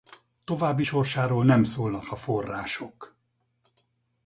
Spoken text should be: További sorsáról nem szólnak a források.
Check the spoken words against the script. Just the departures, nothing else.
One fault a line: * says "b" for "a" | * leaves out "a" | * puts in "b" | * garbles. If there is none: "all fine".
all fine